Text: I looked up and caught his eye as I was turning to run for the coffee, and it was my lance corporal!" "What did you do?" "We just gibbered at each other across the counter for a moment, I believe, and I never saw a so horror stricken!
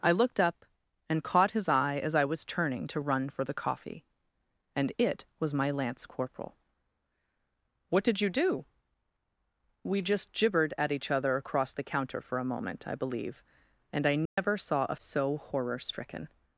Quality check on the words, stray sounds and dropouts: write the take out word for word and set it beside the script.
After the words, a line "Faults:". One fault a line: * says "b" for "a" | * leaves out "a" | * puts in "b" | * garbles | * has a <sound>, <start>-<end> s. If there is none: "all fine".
I looked up and caught his eye as I was turning to run for the coffee, and it was my lance corporal!" "What did you do?" "We just gibbered at each other across the counter for a moment, I believe, and I never saw a so horror stricken!
Faults:
* has a dropout, 14.3-14.4 s